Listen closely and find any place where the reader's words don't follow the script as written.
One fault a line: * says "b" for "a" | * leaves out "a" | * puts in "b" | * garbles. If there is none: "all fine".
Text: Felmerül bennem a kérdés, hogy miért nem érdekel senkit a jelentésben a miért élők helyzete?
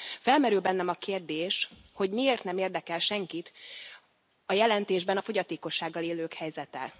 * says "fogyatékossággal" for "miért"